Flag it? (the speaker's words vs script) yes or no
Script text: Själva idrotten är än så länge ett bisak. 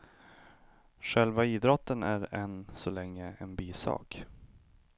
yes